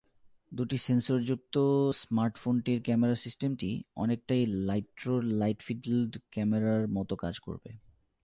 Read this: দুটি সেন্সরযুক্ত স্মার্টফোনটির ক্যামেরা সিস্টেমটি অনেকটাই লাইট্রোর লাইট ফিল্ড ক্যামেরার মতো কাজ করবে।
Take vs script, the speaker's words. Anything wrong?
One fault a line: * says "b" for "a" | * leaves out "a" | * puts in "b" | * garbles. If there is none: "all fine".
all fine